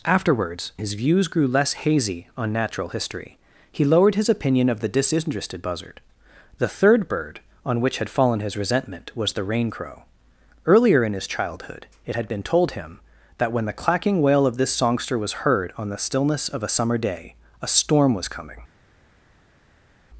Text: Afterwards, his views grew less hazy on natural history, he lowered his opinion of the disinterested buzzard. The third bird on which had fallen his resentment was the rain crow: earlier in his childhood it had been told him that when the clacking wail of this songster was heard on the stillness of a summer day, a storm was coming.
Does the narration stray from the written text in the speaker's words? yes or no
no